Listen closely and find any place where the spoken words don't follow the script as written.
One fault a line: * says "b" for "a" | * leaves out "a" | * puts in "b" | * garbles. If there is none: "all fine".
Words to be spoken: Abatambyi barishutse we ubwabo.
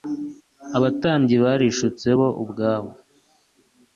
* says "bo" for "we"